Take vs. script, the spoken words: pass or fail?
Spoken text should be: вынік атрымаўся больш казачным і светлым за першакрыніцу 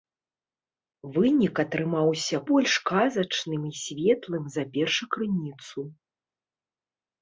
pass